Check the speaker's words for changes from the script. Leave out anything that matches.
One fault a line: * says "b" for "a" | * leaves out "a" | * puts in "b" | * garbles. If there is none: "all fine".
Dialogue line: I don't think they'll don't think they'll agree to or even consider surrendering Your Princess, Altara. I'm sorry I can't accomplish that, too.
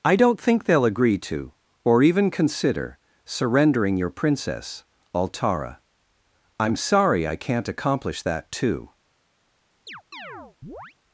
* leaves out "don't think they'll"